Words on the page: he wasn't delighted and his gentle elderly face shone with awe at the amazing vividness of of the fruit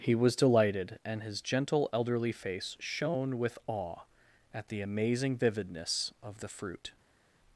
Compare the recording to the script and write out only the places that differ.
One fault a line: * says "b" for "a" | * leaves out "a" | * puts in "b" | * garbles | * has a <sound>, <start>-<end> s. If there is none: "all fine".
* says "was" for "wasn't"
* leaves out "of"